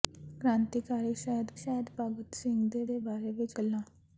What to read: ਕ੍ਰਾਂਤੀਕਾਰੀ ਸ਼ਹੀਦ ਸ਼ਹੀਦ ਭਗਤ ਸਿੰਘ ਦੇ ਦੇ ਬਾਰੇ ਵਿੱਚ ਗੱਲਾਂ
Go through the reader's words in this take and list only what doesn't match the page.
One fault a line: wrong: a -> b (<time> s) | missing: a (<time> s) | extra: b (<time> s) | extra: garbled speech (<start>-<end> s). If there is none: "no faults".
no faults